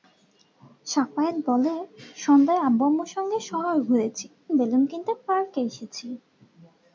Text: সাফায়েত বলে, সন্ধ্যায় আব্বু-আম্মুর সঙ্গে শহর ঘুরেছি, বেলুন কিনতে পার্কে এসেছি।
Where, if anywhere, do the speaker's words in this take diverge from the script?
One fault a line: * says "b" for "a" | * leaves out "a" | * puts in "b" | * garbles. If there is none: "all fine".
all fine